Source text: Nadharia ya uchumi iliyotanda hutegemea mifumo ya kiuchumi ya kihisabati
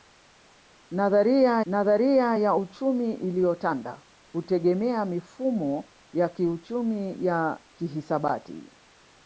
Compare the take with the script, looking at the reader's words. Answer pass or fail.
fail